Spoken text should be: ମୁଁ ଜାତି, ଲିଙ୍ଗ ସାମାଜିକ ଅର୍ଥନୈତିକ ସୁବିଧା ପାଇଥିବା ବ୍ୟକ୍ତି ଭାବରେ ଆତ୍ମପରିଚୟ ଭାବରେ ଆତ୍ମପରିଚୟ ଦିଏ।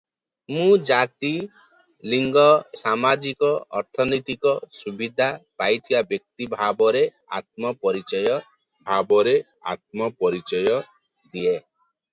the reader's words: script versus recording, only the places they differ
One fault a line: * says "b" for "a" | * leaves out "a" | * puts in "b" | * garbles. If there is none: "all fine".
all fine